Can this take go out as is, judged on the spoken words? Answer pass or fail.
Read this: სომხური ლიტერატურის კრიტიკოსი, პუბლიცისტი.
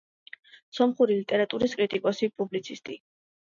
pass